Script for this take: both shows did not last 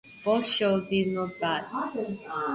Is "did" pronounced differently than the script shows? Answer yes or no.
no